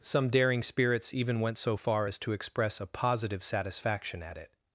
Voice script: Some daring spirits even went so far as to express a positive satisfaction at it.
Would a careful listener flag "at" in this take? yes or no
no